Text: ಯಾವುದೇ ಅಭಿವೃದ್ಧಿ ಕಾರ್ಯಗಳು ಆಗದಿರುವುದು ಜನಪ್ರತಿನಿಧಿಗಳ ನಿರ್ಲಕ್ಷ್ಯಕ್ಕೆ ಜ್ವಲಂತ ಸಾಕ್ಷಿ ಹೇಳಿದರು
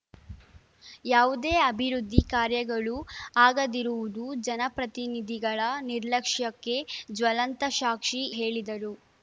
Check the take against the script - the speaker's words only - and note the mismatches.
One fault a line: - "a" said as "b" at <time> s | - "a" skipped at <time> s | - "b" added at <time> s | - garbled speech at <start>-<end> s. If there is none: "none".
none